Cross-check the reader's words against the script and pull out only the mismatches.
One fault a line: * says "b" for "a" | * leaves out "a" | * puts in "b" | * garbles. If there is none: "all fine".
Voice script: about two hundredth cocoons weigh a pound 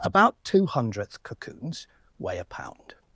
all fine